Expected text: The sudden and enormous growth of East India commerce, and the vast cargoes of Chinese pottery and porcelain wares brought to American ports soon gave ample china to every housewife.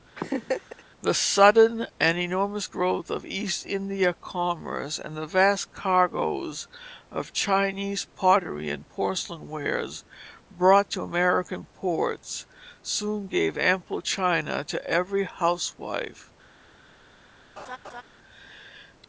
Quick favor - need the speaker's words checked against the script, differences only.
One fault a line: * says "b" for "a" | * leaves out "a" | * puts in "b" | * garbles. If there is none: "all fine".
all fine